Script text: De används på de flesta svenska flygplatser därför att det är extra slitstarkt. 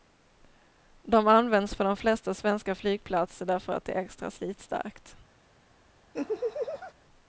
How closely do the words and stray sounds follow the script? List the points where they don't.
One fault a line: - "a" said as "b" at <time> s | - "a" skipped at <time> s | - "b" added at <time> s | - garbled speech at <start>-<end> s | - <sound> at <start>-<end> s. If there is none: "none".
- laugh at 6.1-6.9 s